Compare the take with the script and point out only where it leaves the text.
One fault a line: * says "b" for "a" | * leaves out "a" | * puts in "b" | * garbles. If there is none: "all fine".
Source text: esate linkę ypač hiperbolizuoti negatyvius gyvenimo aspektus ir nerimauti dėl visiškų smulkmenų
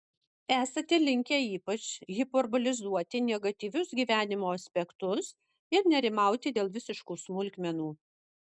all fine